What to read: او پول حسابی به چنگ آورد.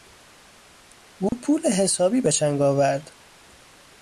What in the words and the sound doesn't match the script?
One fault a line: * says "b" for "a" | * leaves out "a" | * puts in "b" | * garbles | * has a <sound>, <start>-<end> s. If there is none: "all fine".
* has a dropout, 1.3-1.3 s